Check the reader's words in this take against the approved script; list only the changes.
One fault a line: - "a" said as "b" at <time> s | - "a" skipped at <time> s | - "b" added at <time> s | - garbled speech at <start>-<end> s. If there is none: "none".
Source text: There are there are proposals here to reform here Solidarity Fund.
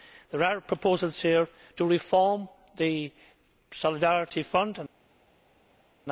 - "there are" skipped at 0.6 s
- "here" said as "the" at 2.8 s